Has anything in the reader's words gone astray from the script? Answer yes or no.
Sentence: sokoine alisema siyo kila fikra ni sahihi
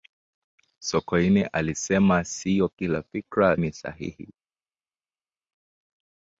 no